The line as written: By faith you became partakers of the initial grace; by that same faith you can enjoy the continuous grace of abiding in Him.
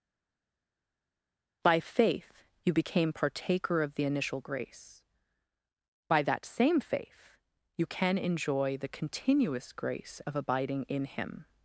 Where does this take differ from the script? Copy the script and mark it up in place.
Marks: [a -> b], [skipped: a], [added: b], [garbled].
By faith you became [partakers -> partaker] of the initial grace; by that same faith you can enjoy the continuous grace of abiding in Him.